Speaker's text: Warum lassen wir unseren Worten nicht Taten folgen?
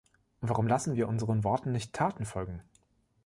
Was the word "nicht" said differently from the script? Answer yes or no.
no